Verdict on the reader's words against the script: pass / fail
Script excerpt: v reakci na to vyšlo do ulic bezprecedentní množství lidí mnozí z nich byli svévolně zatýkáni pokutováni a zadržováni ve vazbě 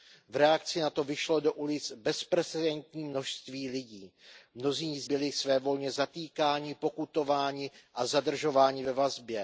fail